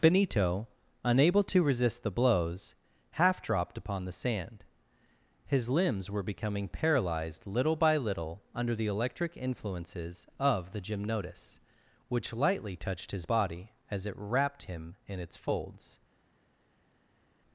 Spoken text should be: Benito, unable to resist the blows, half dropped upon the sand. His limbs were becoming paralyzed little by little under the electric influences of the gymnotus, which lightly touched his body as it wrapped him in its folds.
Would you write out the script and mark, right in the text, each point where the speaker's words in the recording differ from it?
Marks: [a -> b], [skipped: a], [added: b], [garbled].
Benito, unable to resist the blows, half dropped upon the sand. His limbs were becoming paralyzed little by little under the electric influences of the gymnotus, which lightly touched his body as it wrapped him in its folds.